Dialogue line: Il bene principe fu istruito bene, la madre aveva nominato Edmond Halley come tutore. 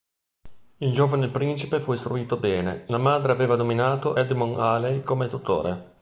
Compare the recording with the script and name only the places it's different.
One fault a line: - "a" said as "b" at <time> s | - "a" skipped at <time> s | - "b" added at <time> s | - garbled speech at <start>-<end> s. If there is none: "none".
- "bene" said as "giovane" at 0.9 s